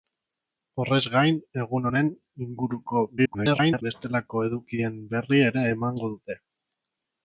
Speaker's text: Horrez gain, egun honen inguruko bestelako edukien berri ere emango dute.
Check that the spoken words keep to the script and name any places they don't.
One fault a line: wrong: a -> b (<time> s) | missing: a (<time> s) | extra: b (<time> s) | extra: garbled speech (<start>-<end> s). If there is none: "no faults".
extra: garbled speech (3.2-3.8 s)